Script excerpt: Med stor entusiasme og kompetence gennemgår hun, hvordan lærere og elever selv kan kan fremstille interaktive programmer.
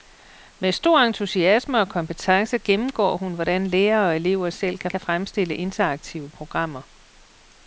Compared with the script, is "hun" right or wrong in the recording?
right